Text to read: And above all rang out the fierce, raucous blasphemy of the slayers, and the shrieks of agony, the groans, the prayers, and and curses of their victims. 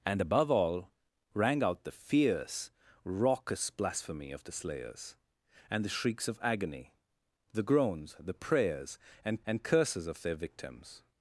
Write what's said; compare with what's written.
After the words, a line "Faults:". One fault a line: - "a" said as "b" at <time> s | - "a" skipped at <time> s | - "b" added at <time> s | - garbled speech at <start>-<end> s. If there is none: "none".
And above all rang out the fierce, raucous blasphemy of the slayers, and the shrieks of agony, the groans, the prayers, and and curses of their victims.
Faults:
none